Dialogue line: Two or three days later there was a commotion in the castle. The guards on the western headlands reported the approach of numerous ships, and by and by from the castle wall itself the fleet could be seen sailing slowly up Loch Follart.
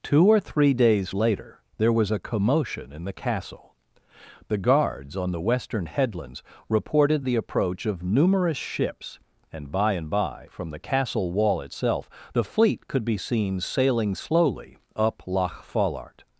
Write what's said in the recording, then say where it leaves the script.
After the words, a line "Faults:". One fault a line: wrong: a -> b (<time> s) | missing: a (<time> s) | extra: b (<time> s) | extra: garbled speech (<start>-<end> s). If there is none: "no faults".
Two or three days later there was a commotion in the castle. The guards on the western headlands reported the approach of numerous ships, and by and by from the castle wall itself the fleet could be seen sailing slowly up Loch Follart.
Faults:
no faults